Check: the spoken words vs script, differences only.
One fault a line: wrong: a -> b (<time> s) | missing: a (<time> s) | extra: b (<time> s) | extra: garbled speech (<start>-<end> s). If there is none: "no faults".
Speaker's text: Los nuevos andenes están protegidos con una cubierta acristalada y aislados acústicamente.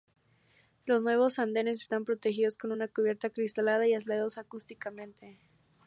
no faults